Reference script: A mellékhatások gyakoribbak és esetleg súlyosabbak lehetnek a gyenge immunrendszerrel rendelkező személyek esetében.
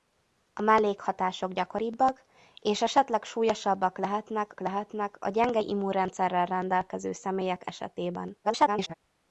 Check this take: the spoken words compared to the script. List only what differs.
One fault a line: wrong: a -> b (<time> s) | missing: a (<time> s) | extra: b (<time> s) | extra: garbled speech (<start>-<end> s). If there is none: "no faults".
extra: lehetnek (4.6 s)
extra: garbled speech (8.4-8.9 s)